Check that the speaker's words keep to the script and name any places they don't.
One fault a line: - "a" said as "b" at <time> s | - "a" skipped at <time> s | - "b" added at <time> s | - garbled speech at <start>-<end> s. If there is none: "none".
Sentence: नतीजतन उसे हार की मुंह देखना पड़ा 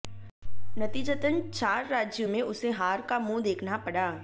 - "चार राज्यों में" added at 1.5 s
- "की" said as "का" at 3.0 s